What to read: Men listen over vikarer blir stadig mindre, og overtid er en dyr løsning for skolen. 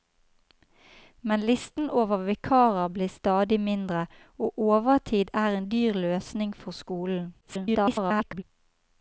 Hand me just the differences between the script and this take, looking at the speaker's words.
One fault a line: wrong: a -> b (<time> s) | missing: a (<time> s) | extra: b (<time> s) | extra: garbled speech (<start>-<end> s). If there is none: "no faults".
extra: garbled speech (7.4-8.4 s)